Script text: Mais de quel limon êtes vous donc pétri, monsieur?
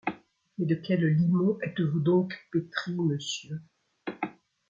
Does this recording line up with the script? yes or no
yes